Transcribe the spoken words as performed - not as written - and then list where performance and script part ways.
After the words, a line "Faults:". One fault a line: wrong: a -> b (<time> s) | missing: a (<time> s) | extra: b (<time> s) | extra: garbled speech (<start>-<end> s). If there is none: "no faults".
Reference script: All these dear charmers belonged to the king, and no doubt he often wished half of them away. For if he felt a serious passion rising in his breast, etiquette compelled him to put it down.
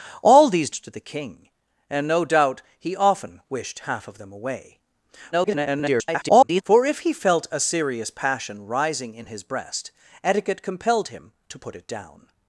All these to the king, and no doubt he often wished half of them away. [garbled] For if he felt a serious passion rising in his breast, etiquette compelled him to put it down.
Faults:
missing: dear charmers belonged (0.7 s)
extra: garbled speech (5.3-6.6 s)